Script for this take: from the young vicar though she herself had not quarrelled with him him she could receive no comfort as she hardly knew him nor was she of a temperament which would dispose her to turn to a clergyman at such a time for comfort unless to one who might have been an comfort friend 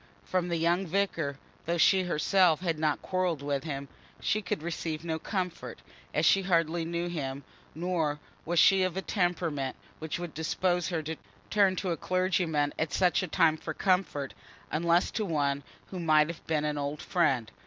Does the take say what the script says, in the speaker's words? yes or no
no